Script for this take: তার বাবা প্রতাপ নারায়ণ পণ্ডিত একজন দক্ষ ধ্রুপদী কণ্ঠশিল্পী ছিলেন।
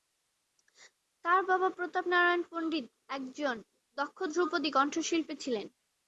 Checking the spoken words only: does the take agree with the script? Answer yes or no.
yes